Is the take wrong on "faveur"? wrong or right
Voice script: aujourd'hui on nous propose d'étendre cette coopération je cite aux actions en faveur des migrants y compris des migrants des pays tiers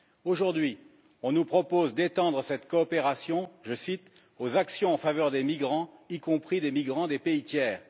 right